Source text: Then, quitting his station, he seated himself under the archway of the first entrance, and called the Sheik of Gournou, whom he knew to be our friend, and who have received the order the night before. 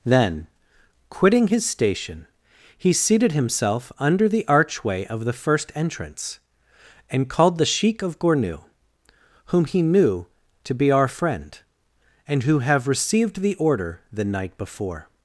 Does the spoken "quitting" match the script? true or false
true